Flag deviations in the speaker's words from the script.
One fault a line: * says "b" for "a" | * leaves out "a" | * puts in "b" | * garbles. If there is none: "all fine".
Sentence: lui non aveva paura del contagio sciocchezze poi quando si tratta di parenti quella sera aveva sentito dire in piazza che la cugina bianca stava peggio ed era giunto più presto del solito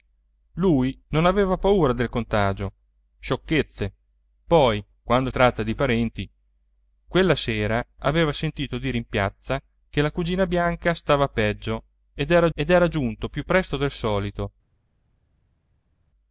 * leaves out "si"
* puts in "ed era"